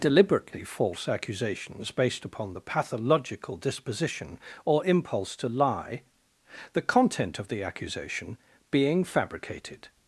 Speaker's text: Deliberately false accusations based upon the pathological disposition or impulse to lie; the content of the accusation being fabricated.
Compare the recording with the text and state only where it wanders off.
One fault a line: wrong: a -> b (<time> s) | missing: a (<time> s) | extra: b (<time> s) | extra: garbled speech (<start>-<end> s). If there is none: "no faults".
no faults